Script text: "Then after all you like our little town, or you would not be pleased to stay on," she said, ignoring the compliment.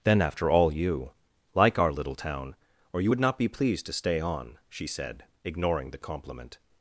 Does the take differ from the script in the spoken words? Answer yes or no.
no